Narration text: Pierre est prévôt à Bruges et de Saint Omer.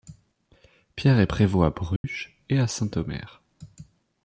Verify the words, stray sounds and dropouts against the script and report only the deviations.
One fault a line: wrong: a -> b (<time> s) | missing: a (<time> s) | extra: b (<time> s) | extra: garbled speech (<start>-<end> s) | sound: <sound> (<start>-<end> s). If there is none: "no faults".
sound: dropout (2.0-2.0 s)
wrong: de -> à (2.6 s)